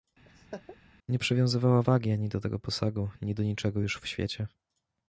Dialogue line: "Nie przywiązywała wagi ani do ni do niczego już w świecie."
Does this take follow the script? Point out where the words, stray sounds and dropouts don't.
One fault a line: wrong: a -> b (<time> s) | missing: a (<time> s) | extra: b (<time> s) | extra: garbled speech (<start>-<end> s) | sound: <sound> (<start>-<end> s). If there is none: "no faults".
sound: laugh (0.2-0.8 s)
extra: tego posagu (2.4 s)